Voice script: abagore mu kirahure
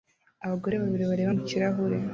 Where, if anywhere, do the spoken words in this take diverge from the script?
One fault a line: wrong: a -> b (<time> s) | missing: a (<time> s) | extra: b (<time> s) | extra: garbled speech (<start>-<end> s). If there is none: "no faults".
extra: babiri bareba (0.8 s)